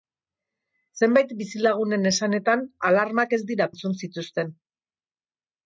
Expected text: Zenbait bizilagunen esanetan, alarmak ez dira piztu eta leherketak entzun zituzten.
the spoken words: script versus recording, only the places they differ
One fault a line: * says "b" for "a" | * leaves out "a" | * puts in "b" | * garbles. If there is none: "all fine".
* leaves out "piztu eta leherketak"